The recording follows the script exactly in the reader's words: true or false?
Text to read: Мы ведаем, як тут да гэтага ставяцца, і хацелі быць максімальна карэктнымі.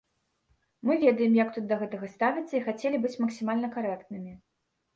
true